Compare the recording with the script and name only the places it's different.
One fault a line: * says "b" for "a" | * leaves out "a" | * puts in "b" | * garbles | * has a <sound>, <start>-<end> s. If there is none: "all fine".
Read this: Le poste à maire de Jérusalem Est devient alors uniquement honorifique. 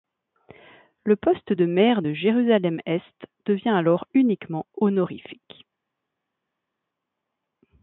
* says "de" for "à"